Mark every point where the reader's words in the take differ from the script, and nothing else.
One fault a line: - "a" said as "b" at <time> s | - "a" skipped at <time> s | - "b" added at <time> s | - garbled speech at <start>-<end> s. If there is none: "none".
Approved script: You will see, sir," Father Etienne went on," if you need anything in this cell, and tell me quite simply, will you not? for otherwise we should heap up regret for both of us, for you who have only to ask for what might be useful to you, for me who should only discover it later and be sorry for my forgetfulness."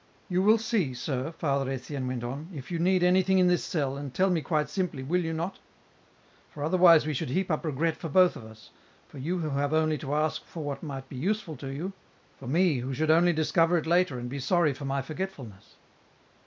none